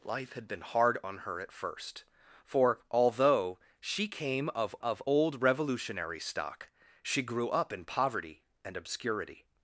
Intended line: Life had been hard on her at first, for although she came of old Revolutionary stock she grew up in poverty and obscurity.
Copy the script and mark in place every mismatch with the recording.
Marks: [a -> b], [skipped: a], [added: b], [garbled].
Life had been hard on her at first, for although she came of [added: of] old Revolutionary stock she grew up in poverty and obscurity.